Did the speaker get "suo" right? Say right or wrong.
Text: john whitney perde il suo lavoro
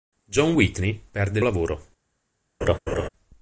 wrong